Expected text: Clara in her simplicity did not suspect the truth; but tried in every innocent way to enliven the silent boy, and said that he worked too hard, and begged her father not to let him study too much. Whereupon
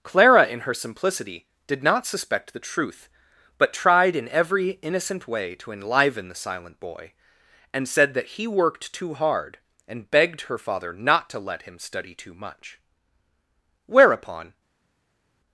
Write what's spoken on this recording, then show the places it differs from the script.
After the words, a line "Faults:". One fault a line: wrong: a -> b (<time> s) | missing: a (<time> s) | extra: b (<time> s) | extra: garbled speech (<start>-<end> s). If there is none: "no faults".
Clara in her simplicity did not suspect the truth; but tried in every innocent way to enliven the silent boy, and said that he worked too hard, and begged her father not to let him study too much. Whereupon
Faults:
no faults